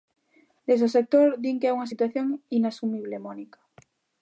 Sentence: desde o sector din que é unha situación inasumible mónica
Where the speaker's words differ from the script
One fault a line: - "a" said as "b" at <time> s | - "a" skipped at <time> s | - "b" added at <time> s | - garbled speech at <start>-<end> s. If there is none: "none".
none